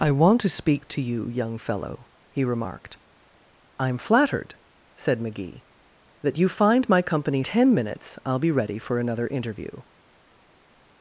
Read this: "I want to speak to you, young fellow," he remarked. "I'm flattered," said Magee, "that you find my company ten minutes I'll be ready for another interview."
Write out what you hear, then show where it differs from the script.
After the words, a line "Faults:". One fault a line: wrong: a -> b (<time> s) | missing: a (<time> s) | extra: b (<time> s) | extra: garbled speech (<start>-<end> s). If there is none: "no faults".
"I want to speak to you, young fellow," he remarked. "I'm flattered," said Magee, "that you find my company ten minutes I'll be ready for another interview."
Faults:
no faults